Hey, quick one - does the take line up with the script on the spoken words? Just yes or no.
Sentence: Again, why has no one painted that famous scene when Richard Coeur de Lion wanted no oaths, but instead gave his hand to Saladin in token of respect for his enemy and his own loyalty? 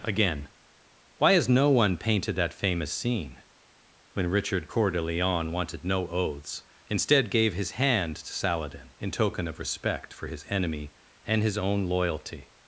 no